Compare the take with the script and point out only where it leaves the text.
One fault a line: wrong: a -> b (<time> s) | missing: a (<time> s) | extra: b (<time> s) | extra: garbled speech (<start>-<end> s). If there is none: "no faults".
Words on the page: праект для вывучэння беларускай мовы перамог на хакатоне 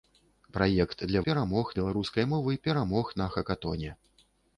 wrong: вывучэння -> перамог (1.3 s)